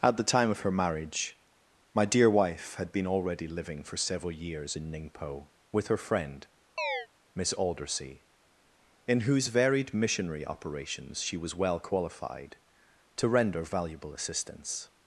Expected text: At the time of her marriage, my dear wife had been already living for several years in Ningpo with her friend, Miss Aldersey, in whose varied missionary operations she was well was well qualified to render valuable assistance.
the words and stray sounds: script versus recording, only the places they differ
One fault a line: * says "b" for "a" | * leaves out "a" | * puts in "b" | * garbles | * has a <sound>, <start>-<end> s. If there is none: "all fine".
* has a chirp, 6.8-7.1 s
* leaves out "was well"